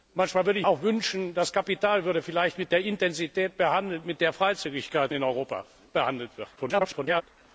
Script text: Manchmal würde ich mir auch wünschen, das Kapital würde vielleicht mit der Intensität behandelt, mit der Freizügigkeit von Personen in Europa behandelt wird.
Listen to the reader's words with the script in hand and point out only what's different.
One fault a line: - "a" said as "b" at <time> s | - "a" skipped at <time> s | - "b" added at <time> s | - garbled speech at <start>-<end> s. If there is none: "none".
- "mir" skipped at 0.7 s
- "von Personen" skipped at 5.1 s
- garbled speech at 6.6-7.2 s